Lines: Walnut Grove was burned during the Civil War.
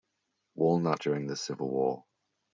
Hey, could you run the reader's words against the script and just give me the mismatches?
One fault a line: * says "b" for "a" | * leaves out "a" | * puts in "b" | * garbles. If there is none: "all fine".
* leaves out "Grove was burned"